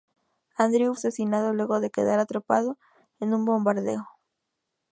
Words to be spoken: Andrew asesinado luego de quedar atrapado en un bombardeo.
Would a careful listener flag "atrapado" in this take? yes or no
no